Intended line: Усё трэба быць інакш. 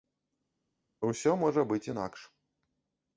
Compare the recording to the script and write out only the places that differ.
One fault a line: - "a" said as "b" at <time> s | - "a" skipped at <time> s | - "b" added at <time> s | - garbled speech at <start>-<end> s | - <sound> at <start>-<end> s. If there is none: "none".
- "трэба" said as "можа" at 1.4 s